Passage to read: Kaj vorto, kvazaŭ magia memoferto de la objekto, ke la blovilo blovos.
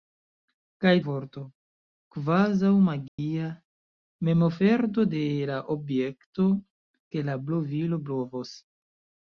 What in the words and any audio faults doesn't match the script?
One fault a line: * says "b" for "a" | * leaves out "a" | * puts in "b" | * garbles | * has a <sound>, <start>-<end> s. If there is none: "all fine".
* has a dropout, 3.1-3.2 s